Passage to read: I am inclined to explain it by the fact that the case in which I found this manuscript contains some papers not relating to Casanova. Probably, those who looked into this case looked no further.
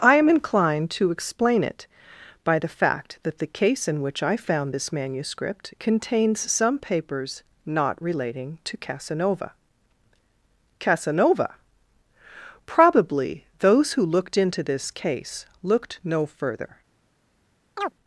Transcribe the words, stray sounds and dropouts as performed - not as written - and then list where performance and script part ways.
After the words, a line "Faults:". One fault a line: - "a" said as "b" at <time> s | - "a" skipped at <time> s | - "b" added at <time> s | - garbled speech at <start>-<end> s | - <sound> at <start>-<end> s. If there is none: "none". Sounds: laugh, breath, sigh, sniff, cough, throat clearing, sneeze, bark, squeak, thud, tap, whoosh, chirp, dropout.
I am inclined to explain it by the fact that the case in which I found this manuscript contains some papers not relating to Casanova Casanova. Probably, those who looked into this case looked no further.
Faults:
- "Casanova" added at 10.8 s
- chirp at 17.8-17.9 s